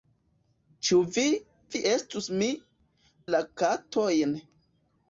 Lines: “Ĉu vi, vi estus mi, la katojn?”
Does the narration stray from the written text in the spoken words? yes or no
no